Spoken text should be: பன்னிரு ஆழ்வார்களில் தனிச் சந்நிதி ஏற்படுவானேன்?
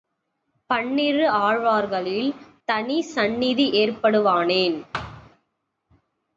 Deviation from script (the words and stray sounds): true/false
true